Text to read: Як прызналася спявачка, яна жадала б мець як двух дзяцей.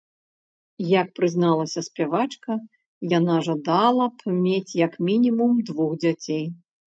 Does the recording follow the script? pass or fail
fail